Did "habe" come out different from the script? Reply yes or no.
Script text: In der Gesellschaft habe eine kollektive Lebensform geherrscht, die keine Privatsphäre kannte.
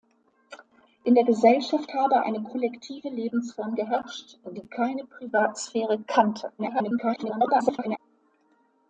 no